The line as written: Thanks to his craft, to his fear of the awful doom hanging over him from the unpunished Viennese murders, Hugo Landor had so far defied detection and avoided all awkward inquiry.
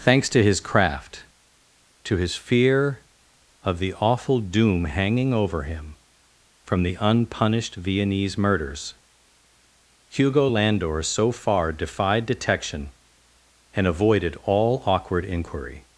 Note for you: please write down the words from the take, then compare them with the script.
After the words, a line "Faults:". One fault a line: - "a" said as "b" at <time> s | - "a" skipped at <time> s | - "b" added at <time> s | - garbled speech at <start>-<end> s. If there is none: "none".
Thanks to his craft, to his fear of the awful doom hanging over him from the unpunished Viennese murders, Hugo Landor so far defied detection and avoided all awkward inquiry.
Faults:
- "had" skipped at 11.0 s